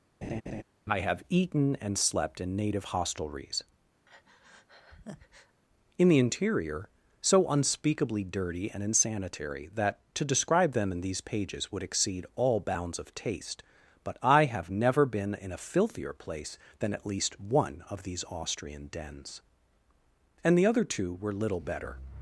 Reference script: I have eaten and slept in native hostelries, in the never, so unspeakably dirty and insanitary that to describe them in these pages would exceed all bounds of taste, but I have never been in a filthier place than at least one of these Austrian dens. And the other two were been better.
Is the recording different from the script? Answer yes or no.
yes